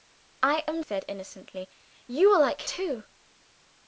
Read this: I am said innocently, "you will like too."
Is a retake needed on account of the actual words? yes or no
no